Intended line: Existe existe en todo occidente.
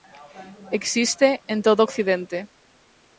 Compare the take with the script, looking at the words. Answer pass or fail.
fail